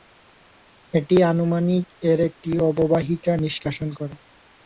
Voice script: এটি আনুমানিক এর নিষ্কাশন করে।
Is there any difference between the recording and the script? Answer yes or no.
yes